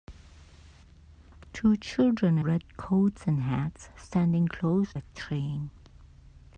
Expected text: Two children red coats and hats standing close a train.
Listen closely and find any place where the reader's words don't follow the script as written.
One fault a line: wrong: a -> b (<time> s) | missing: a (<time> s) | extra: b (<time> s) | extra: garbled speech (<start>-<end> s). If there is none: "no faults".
no faults